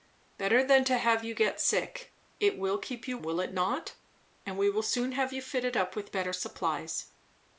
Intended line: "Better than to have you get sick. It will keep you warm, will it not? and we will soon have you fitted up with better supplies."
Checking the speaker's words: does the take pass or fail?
fail